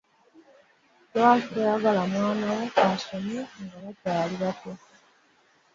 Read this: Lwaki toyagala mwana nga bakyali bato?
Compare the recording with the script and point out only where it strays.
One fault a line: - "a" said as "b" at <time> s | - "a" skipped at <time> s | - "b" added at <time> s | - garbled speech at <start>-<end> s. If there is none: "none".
- "wo asome" added at 2.5 s